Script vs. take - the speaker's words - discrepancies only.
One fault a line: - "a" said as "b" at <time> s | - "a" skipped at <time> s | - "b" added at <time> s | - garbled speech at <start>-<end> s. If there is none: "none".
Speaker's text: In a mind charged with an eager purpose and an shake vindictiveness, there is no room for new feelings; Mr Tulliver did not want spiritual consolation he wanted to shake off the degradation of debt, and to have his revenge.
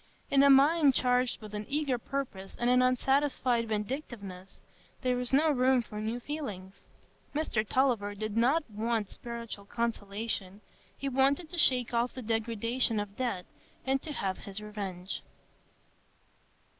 - "shake" said as "unsatisfied" at 2.8 s